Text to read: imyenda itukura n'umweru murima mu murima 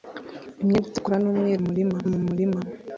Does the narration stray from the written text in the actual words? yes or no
no